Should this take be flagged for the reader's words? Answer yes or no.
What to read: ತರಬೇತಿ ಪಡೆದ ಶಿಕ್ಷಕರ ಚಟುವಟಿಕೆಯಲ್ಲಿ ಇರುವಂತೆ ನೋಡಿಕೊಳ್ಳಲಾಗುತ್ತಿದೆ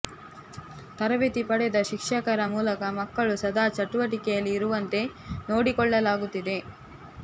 yes